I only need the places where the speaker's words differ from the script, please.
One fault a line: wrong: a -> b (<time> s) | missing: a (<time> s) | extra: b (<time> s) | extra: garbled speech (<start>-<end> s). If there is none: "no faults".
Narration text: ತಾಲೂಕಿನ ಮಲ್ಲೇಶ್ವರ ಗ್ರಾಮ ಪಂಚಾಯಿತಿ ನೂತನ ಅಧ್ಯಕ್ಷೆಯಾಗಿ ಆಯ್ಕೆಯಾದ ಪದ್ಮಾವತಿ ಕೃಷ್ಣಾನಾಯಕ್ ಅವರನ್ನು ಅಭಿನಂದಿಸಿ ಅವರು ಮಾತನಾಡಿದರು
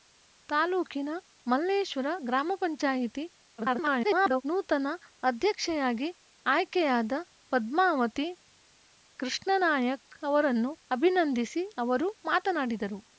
extra: garbled speech (3.6-4.4 s)